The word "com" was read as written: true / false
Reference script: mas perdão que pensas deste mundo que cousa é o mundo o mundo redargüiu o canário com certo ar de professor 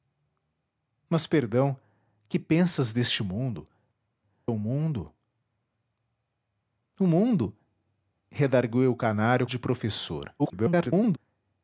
false